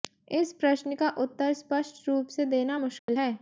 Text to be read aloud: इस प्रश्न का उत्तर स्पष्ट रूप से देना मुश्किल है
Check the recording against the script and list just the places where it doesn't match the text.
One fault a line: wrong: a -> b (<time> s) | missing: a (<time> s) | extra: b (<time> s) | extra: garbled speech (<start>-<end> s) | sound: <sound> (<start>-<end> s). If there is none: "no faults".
sound: dropout (3.0-3.1 s)